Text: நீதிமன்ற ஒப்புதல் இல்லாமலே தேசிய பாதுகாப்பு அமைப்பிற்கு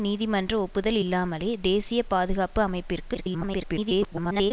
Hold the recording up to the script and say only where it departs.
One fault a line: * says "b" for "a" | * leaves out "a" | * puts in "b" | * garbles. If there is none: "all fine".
* garbles